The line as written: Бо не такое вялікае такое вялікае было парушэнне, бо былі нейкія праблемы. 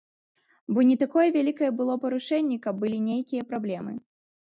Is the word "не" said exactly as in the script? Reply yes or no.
yes